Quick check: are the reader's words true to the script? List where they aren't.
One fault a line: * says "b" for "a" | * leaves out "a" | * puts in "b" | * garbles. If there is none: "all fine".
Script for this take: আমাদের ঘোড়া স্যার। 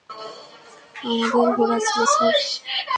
* puts in "ছিল"